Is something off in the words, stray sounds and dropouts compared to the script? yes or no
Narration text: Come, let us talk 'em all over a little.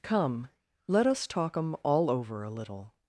no